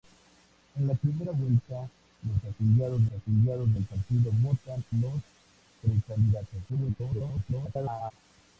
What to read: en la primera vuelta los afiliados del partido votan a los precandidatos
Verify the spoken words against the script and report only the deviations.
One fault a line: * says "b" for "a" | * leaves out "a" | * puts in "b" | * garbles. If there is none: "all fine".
* puts in "afiliados"
* leaves out "a"
* garbles